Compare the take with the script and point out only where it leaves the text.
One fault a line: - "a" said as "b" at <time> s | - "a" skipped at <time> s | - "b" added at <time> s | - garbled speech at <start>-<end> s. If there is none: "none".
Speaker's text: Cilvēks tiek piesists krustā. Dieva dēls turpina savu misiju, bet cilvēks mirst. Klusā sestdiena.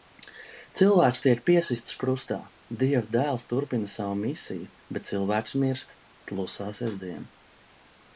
none